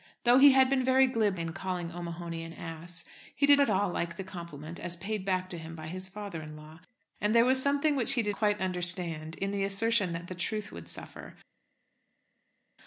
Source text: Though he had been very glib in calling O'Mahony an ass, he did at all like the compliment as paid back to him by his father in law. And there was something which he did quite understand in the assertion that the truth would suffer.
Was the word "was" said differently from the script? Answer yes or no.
no